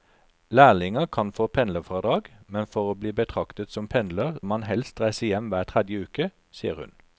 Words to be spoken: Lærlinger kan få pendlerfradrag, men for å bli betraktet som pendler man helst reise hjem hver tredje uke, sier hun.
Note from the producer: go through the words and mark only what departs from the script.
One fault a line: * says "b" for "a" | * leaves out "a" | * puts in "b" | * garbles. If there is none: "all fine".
all fine